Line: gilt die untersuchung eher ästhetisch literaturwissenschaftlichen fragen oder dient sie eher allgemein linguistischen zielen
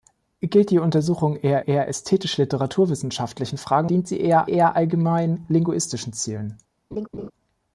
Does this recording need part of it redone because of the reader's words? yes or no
yes